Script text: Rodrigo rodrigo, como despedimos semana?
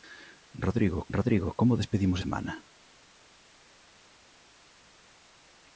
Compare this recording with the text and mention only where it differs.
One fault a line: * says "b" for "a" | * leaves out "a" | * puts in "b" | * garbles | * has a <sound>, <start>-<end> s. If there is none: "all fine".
all fine